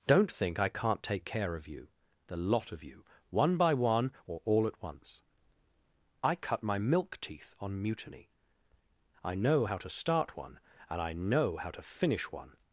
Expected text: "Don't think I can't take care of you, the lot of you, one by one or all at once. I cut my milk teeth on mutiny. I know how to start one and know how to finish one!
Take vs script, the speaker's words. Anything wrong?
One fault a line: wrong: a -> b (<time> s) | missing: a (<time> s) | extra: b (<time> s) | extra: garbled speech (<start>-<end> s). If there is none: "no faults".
extra: I (11.0 s)